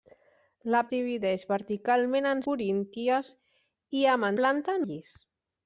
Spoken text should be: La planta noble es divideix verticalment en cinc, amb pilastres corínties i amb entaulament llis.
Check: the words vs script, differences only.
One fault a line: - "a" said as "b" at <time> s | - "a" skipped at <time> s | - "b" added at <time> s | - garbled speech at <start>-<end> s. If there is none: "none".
- "planta noble es" skipped at 0.8 s
- "cinc amb pilastres" skipped at 2.4 s
- "entaulament" said as "planta" at 4.4 s